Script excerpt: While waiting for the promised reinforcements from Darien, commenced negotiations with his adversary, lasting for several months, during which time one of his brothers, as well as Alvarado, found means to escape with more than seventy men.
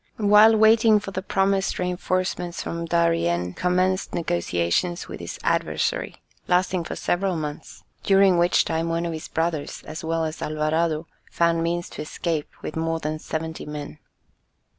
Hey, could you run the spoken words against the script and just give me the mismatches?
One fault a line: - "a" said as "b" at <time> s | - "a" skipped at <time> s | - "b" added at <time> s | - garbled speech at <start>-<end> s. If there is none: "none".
none